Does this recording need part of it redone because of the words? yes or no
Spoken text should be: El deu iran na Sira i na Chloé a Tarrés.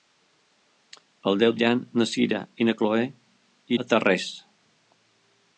no